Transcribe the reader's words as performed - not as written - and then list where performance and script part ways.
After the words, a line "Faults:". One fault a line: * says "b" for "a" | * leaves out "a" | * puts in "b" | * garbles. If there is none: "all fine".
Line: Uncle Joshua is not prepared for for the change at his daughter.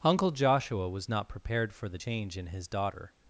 Uncle Joshua was not prepared for the change in his daughter.
Faults:
* says "was" for "is"
* leaves out "for"
* says "in" for "at"